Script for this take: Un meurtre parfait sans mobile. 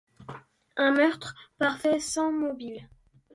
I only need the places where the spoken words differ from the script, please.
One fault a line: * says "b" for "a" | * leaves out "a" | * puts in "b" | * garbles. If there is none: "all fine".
all fine